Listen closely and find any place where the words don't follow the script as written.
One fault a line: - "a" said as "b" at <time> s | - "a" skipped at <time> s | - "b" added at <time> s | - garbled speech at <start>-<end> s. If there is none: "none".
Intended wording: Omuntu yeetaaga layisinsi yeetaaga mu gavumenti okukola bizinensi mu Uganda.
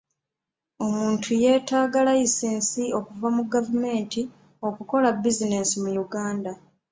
- "yeetaaga" said as "okuva" at 3.0 s